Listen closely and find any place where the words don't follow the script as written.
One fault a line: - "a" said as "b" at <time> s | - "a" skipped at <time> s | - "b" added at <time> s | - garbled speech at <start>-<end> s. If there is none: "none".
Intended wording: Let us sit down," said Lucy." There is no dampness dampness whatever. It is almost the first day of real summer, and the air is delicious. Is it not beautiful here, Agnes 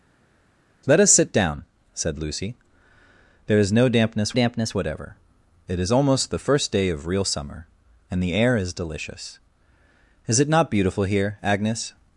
none